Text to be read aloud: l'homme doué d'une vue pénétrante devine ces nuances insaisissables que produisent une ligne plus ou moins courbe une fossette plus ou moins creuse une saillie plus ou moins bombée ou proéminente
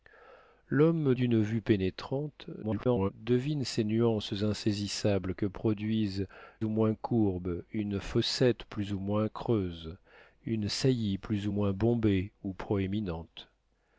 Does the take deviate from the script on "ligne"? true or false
true